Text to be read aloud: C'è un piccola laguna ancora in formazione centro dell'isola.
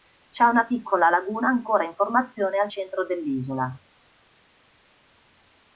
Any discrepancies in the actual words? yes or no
yes